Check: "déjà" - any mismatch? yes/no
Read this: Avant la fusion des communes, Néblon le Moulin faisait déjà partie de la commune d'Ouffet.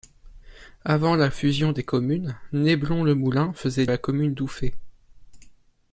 yes